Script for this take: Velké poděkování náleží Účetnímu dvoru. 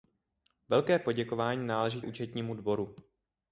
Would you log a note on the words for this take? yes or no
no